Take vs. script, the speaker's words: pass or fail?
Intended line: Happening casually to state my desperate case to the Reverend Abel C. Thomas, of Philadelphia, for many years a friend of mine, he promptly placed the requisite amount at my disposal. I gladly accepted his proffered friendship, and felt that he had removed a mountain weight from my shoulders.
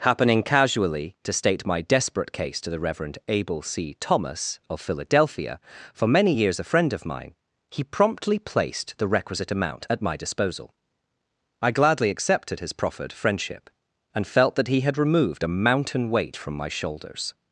pass